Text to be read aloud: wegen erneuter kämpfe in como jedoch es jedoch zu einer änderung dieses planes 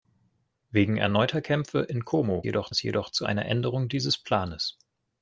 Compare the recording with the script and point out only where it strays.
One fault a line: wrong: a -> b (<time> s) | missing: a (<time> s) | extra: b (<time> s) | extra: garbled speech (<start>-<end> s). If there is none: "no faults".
no faults